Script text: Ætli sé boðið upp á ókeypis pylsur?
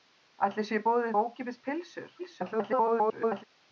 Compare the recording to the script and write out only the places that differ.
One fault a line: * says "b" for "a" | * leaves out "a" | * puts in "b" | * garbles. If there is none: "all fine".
* leaves out "upp"
* garbles